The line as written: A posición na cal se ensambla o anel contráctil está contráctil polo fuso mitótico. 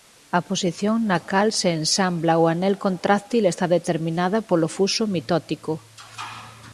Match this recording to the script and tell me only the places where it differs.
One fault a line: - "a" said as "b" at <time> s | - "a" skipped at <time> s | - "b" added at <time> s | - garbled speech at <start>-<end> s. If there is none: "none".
- "contráctil" said as "determinada" at 3.8 s